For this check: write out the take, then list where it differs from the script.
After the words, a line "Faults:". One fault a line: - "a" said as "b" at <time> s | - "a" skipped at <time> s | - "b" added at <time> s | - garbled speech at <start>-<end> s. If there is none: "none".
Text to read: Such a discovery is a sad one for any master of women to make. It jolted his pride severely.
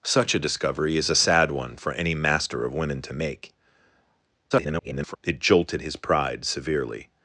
Such a discovery is a sad one for any master of women to make. [garbled] It jolted his pride severely.
Faults:
- garbled speech at 4.5-5.2 s